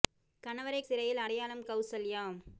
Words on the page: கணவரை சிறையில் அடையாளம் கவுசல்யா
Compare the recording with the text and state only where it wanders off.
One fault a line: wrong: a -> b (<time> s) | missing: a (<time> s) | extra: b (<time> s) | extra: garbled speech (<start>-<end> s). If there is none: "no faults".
no faults